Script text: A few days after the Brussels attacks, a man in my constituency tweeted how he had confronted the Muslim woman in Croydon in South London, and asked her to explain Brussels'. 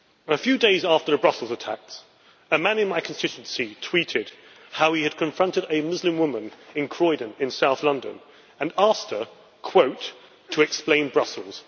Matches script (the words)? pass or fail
fail